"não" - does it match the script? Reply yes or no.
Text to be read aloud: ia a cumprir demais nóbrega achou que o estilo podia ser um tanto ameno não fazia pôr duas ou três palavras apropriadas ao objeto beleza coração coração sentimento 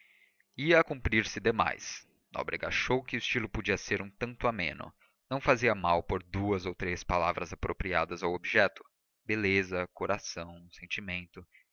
yes